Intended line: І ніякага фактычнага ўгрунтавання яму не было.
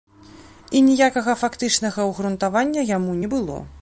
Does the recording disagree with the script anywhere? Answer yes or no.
no